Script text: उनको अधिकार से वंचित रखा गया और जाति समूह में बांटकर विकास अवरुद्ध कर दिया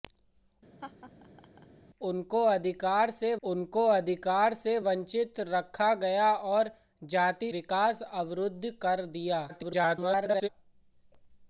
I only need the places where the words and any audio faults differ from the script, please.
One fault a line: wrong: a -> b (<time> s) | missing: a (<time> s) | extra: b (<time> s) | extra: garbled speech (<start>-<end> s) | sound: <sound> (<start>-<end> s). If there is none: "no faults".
sound: laugh (0.8-1.7 s)
extra: उनको अधिकार से (3.4 s)
missing: समूह में बांटकर (7.5 s)
extra: garbled speech (9.5-10.5 s)